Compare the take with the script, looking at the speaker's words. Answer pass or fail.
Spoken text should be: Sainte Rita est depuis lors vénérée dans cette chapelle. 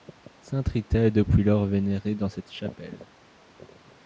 pass